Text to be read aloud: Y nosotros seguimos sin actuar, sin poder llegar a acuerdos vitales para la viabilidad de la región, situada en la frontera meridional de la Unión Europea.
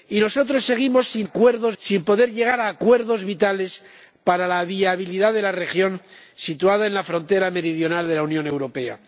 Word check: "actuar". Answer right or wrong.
wrong